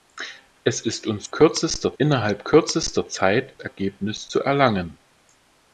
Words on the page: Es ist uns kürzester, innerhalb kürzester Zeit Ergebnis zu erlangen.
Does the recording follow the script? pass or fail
pass